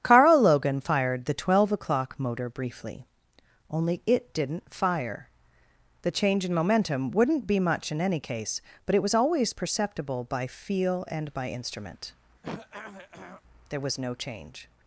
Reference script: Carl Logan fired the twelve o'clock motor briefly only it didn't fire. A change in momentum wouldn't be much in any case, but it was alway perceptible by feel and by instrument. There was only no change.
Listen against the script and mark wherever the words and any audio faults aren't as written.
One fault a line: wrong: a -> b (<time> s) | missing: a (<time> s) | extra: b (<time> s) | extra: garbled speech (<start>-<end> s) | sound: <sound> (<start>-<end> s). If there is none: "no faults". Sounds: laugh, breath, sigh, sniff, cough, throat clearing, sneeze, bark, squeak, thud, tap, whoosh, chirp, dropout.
wrong: A -> The (6.0 s)
wrong: alway -> always (9.2 s)
sound: throat clearing (12.4-13.4 s)
missing: only (14.0 s)